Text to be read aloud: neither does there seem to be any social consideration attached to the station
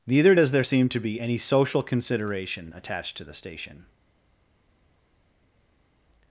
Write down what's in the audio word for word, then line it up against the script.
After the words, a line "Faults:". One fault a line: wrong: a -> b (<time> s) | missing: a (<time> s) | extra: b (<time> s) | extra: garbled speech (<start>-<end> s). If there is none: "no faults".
neither does there seem to be any social consideration attached to the station
Faults:
no faults